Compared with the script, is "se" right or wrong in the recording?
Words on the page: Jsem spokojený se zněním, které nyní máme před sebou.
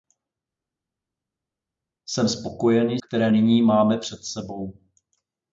wrong